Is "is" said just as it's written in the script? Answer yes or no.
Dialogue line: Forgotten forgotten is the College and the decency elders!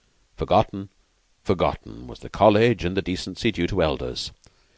no